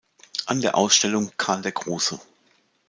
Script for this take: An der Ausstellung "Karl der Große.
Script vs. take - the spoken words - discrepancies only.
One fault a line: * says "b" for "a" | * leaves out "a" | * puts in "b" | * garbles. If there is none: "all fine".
all fine